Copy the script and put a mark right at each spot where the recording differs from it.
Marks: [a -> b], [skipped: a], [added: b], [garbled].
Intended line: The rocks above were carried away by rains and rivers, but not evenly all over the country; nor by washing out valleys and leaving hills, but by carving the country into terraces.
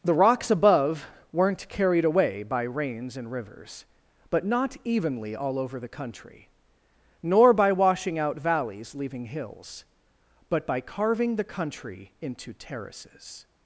The rocks above [were -> weren't] carried away by rains and rivers, but not evenly all over the country; nor by washing out valleys [skipped: and] leaving hills, but by carving the country into terraces.